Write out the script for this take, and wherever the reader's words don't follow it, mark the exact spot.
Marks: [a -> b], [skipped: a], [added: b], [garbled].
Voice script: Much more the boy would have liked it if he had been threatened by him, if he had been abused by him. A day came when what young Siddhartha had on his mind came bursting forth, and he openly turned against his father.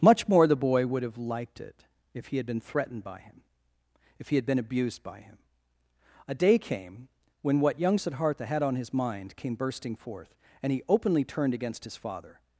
Much more the boy would have liked it if he had been threatened by him, if he had been abused by him. A day came when what young Siddhartha had on his mind came bursting forth, and he openly turned against his father.